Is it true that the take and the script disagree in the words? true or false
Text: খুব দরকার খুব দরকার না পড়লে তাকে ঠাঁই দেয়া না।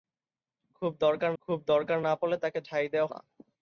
false